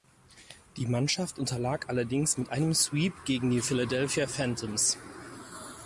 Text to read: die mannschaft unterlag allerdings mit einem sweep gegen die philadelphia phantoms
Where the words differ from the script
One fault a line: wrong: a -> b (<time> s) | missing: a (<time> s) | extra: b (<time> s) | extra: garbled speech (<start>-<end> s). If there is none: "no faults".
no faults